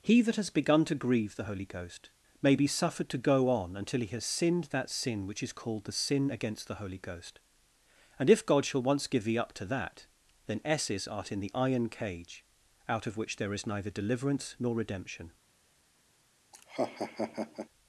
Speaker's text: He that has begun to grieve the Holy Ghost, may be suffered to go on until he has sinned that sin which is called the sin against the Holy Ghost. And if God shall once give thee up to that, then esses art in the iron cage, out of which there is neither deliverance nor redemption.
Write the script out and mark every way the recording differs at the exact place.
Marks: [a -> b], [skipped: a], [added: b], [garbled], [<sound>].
He that has begun to grieve the Holy Ghost, may be suffered to go on until he has sinned that sin which is called the sin against the Holy Ghost. And if God shall once give thee up to that, then esses art in the iron cage, out of which there is neither deliverance nor redemption. [laugh]